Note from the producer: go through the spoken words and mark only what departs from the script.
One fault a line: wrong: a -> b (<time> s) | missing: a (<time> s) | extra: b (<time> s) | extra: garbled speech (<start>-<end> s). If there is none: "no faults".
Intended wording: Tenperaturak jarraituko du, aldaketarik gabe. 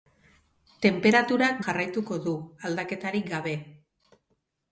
no faults